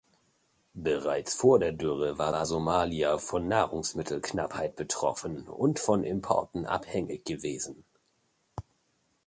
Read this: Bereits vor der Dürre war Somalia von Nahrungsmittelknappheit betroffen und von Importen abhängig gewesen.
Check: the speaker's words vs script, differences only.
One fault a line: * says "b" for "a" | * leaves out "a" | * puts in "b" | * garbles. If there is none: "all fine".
* puts in "war"